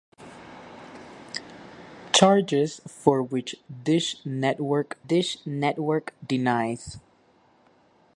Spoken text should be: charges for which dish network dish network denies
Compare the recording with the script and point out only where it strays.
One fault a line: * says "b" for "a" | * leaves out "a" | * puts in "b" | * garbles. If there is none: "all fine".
all fine